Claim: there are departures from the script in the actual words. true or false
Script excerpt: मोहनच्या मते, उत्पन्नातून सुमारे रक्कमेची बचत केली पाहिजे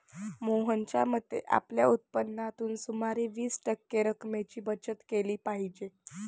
true